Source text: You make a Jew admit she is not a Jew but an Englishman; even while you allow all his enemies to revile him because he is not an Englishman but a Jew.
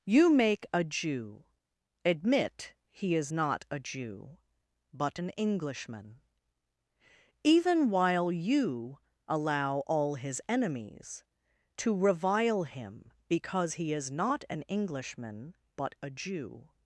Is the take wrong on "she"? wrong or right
wrong